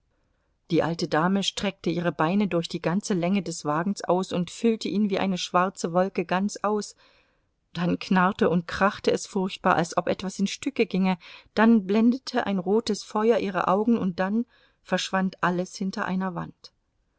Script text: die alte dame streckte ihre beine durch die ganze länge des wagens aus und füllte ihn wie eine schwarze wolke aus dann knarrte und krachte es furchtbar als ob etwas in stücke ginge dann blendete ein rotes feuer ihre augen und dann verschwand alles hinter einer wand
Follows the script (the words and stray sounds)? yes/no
no